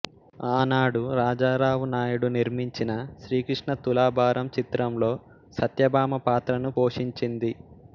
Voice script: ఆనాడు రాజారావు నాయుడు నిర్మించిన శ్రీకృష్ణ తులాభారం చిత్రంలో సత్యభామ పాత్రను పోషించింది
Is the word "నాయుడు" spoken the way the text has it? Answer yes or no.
yes